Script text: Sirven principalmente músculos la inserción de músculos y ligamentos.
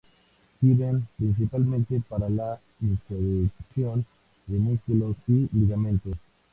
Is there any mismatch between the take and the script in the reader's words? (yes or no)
yes